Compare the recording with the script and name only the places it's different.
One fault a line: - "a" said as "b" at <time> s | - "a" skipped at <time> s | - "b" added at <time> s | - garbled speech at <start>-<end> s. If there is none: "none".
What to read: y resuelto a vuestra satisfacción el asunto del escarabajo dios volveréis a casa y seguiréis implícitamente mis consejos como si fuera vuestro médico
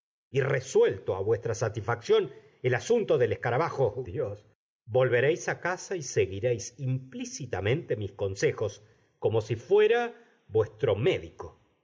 none